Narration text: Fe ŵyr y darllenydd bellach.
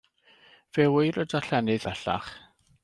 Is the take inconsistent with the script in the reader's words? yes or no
no